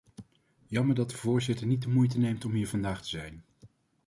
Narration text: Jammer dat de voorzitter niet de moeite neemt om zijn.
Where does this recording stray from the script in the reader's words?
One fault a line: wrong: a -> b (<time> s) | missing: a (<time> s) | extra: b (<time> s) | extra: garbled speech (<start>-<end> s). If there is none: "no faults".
extra: hier vandaag te (2.5 s)